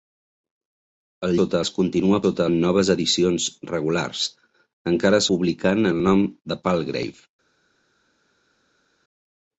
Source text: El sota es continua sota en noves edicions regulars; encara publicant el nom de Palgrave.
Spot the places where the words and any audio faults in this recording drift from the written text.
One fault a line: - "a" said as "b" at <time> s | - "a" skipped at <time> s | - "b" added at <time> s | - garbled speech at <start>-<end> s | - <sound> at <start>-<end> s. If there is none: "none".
none